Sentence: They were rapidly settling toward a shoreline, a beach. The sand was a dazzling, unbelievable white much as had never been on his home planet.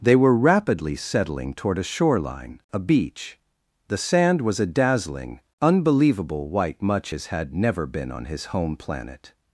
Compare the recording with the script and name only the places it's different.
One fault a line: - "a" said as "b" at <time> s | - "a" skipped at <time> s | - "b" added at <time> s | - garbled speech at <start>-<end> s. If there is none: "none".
none